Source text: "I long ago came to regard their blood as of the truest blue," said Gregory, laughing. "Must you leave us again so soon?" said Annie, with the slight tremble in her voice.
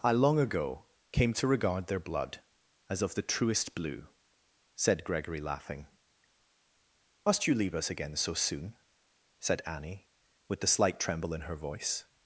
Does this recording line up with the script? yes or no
yes